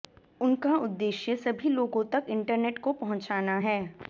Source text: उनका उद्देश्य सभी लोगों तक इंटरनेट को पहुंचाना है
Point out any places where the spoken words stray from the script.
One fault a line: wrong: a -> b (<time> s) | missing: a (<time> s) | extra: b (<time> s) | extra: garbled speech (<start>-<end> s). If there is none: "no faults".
no faults